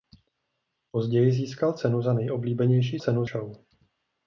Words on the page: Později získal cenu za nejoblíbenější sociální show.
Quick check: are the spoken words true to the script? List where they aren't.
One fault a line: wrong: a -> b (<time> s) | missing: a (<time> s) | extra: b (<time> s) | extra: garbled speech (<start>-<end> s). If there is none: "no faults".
wrong: sociální -> cenu (3.0 s)